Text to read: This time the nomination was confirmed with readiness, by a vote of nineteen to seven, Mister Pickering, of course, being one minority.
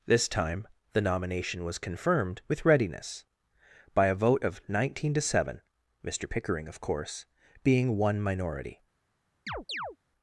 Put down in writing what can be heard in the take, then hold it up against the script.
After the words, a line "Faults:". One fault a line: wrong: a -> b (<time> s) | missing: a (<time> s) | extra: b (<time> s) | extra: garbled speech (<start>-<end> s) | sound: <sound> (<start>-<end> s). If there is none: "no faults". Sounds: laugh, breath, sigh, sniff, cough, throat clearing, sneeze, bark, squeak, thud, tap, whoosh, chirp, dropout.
This time the nomination was confirmed with readiness, by a vote of nineteen to seven, Mister Pickering, of course, being one minority.
Faults:
sound: chirp (9.5-10.0 s)